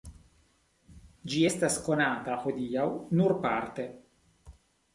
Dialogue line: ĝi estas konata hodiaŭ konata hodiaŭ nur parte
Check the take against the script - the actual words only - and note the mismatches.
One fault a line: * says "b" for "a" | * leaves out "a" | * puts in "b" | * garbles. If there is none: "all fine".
* leaves out "konata hodiaŭ"